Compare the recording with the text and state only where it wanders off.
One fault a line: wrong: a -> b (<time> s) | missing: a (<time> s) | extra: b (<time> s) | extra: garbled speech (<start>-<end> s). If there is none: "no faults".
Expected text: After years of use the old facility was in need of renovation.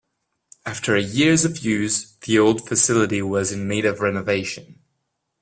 no faults